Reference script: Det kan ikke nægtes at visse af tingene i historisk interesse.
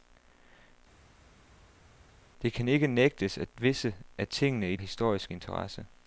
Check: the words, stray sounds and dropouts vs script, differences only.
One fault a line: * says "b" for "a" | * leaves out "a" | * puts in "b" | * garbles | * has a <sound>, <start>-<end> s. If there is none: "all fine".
all fine